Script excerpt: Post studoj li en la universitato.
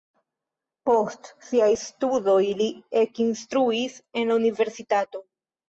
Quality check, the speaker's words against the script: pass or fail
fail